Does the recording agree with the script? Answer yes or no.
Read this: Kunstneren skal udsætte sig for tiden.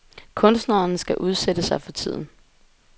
yes